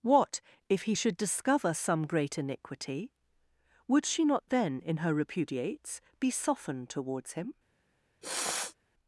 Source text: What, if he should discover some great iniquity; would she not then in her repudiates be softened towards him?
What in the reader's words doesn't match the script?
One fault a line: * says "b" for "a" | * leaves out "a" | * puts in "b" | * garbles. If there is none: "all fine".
all fine